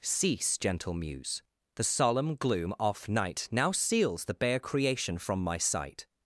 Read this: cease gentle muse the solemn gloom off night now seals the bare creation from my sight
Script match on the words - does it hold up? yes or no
yes